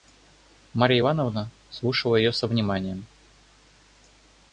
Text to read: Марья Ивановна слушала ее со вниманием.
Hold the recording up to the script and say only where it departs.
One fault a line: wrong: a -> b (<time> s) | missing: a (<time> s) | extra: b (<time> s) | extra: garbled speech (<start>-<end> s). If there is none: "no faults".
no faults